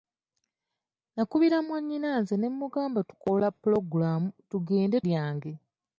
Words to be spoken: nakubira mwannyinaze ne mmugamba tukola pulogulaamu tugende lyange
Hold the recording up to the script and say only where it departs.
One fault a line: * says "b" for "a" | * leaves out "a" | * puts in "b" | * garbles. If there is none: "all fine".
all fine